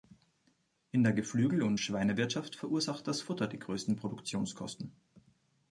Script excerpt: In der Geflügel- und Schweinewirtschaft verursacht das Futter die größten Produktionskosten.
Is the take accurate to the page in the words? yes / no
yes